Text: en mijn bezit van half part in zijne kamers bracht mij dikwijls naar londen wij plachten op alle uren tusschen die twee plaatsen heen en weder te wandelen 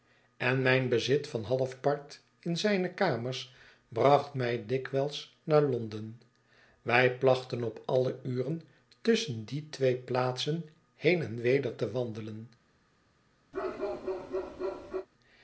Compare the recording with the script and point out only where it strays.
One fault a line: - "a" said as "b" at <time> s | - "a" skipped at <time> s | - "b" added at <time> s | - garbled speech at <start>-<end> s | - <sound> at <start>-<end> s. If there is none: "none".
- bark at 13.5-15.1 s